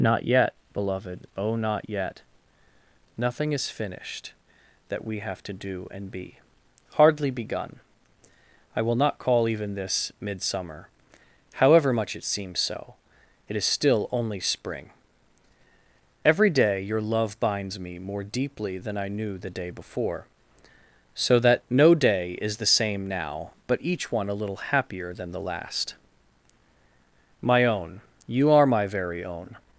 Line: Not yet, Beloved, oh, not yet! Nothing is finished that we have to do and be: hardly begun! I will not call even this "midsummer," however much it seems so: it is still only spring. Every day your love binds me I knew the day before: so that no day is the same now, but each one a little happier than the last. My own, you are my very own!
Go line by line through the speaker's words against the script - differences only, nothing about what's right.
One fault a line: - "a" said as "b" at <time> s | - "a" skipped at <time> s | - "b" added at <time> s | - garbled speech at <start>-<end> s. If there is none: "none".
- "more deeply than" added at 18.0 s